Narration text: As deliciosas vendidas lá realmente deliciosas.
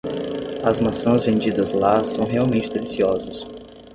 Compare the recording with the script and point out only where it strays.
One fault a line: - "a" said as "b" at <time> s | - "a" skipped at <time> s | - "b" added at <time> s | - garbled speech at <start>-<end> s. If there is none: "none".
- "deliciosas" said as "maçãs" at 0.8 s
- "são" added at 2.0 s